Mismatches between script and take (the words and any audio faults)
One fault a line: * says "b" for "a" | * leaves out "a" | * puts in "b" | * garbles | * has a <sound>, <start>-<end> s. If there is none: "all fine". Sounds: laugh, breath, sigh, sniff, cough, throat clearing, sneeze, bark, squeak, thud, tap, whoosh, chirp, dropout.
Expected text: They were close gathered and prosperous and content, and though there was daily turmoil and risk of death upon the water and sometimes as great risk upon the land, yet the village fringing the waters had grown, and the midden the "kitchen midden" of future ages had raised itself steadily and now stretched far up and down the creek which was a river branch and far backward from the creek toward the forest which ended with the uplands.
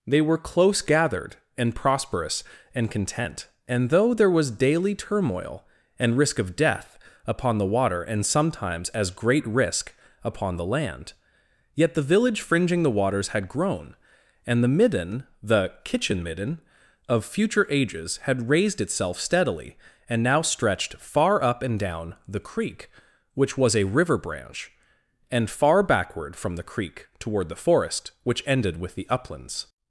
all fine